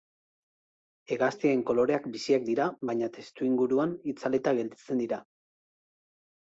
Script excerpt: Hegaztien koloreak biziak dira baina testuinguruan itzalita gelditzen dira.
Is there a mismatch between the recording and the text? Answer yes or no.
no